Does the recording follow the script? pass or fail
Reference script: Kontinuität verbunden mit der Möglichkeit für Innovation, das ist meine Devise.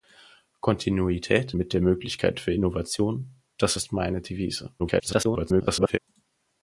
fail